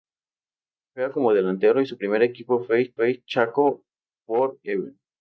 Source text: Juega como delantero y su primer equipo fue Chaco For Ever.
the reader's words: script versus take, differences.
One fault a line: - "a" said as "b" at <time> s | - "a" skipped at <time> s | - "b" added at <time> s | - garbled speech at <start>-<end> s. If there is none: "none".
- "fue" added at 2.9 s